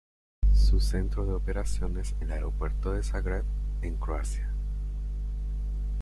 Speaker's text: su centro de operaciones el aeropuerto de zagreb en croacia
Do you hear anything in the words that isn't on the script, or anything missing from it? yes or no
no